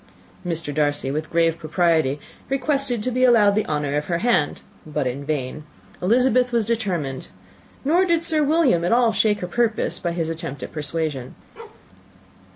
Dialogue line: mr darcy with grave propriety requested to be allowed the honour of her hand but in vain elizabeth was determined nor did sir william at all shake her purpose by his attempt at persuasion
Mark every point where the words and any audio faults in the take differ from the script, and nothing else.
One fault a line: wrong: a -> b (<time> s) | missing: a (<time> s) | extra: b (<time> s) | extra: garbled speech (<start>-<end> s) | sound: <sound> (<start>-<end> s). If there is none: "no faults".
sound: bark (11.6-11.9 s)